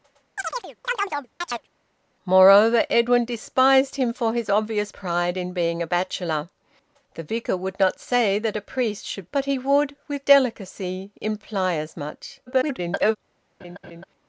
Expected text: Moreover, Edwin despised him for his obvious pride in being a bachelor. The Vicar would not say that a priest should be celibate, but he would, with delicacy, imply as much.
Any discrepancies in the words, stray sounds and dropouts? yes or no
yes